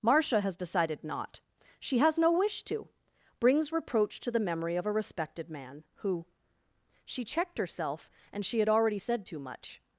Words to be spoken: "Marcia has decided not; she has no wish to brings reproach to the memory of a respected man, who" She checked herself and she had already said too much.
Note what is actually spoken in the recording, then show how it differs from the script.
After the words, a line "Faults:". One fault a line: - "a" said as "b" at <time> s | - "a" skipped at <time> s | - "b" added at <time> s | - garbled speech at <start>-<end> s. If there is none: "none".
"Marcia has decided not; she has no wish to brings reproach to the memory of a respected man, who" She checked herself and she had already said too much.
Faults:
none